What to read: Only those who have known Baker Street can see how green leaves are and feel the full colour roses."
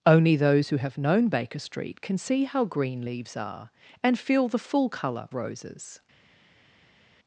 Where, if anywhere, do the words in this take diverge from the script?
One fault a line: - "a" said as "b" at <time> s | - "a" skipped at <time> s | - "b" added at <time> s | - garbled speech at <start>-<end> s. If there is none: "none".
none